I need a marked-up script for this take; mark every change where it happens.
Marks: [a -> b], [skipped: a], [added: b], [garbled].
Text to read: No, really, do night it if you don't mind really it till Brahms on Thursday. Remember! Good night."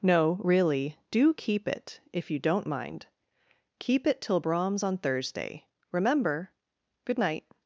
No, really, do [night -> keep] it if you don't mind [really -> keep] it till Brahms on Thursday. Remember! Good night."